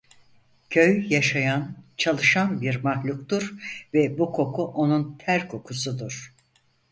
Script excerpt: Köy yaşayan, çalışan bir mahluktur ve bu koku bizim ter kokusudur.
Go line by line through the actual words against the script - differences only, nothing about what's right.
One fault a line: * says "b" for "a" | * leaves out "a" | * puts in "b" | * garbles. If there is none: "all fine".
* says "onun" for "bizim"